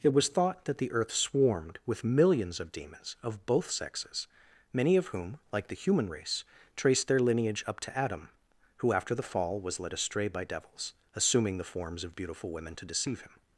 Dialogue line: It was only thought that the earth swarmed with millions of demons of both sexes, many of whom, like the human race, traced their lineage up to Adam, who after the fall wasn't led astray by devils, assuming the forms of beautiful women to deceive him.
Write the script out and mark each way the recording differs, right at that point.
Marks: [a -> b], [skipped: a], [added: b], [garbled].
It was [skipped: only] thought that the earth swarmed with millions of demons of both sexes, many of whom, like the human race, traced their lineage up to Adam, who after the fall [wasn't -> was] led astray by devils, assuming the forms of beautiful women to deceive him.